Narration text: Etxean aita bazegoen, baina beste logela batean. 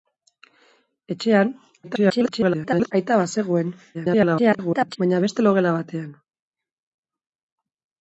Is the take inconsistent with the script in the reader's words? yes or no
yes